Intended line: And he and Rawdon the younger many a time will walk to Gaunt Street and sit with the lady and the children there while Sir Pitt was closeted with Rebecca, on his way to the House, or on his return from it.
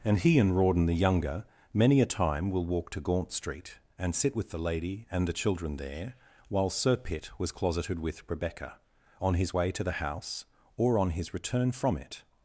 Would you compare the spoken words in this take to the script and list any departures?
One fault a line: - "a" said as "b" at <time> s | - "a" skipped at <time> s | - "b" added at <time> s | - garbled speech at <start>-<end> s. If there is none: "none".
none